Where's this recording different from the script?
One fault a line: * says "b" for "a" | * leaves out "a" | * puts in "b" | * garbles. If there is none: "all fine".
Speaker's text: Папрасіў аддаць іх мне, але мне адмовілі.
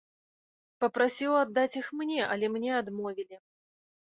all fine